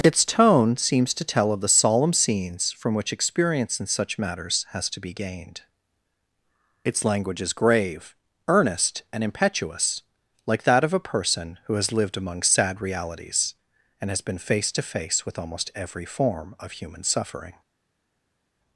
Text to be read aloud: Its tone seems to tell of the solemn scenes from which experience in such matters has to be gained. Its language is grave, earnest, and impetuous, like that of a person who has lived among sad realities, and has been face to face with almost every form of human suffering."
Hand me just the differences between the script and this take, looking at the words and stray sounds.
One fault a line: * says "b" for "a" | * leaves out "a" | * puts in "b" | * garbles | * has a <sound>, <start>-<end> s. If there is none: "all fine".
all fine